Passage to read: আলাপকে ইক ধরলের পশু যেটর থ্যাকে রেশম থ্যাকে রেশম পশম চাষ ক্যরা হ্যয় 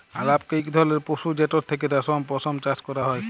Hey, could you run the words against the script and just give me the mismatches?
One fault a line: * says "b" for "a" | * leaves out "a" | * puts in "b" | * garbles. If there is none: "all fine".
* leaves out "থ্যাকে রেশম"